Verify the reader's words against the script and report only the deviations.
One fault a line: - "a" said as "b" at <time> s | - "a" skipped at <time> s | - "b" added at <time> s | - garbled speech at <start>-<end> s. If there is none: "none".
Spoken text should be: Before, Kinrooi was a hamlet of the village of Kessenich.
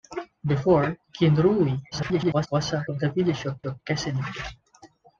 - garbled speech at 1.9-2.5 s
- "hamlet" skipped at 2.9 s
- "of" added at 3.6 s